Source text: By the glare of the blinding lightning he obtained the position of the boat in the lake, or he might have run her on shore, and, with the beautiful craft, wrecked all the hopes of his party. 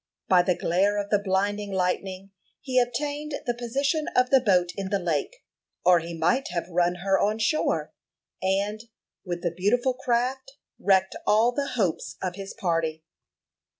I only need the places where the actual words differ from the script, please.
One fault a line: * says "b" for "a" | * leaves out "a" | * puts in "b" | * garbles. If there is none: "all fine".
all fine